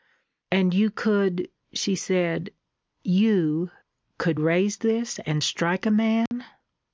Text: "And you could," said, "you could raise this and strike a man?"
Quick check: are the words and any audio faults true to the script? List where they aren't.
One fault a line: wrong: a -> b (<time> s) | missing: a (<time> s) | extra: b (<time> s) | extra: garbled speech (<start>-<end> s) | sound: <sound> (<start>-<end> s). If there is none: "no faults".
extra: she (1.7 s)
sound: dropout (6.3-6.3 s)